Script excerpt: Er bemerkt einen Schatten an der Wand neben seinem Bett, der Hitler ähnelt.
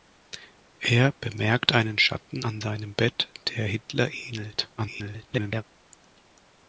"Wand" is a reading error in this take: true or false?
true